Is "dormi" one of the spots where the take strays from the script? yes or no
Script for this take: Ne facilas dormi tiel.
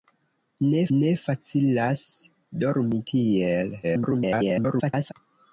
no